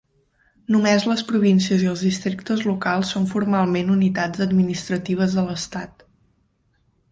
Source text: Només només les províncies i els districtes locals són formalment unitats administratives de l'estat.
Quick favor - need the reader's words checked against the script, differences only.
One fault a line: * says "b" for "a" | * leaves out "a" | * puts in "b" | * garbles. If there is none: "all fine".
* leaves out "només"